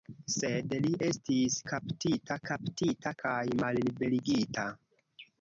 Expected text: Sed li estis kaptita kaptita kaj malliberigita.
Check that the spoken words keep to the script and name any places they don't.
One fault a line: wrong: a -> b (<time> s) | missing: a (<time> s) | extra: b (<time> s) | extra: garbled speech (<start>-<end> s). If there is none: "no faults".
no faults